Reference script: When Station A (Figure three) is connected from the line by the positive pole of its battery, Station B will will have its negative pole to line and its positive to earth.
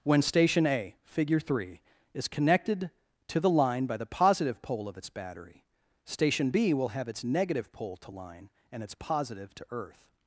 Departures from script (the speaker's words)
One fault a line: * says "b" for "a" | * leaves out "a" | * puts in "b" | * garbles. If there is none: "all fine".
* says "to" for "from"
* leaves out "will"